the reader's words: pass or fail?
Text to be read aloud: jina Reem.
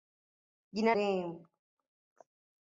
pass